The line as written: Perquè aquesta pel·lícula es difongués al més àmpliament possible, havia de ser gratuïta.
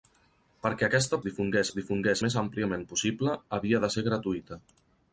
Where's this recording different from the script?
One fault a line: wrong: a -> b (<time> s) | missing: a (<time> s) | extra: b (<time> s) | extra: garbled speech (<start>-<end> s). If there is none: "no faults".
wrong: pel·lícula -> difongués (1.3 s)
missing: al (2.2 s)